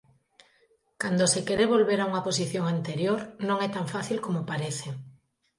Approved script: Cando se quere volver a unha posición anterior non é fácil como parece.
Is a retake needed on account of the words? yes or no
yes